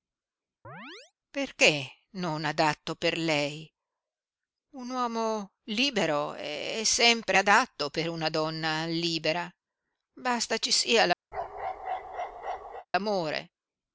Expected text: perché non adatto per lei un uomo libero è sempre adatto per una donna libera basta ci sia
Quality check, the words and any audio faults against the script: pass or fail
fail